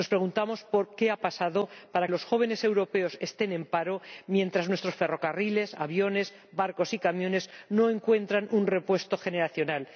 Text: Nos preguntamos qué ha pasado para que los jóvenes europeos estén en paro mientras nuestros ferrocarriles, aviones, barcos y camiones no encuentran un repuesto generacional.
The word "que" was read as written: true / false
false